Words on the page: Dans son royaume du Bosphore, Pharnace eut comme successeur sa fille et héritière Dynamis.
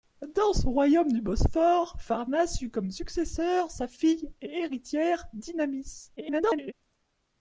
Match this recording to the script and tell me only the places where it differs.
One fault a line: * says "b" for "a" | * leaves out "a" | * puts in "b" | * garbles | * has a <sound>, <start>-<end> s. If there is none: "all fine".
* garbles